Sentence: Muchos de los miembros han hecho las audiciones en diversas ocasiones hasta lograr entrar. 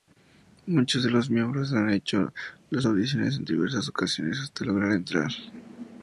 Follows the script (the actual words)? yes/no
yes